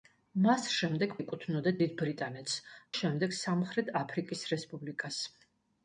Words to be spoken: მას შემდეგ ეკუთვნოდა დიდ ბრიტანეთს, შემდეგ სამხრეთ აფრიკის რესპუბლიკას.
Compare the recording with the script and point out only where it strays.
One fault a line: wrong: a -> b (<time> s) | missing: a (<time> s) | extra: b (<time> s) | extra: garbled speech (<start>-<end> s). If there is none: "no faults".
no faults